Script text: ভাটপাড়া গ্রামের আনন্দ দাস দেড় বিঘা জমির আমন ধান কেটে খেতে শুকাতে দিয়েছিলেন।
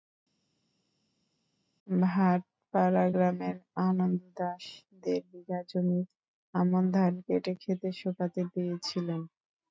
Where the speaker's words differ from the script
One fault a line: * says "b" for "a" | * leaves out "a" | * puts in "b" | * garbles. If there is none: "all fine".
all fine